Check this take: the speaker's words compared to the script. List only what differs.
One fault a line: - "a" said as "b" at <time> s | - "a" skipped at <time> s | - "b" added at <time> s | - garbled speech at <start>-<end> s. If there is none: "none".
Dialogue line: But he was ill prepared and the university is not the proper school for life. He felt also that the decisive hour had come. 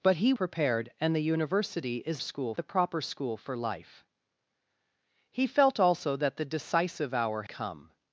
- "was ill" skipped at 0.3 s
- "not" said as "school" at 2.2 s
- "had" skipped at 7.4 s